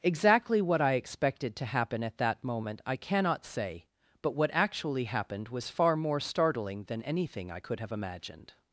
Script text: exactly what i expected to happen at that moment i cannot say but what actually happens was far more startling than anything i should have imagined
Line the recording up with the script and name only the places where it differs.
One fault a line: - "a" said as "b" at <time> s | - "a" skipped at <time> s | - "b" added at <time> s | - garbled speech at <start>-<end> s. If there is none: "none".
- "happens" said as "happened" at 5.0 s
- "should" said as "could" at 7.6 s